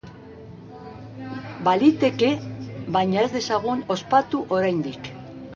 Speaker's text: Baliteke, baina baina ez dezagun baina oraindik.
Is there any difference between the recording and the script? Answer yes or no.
yes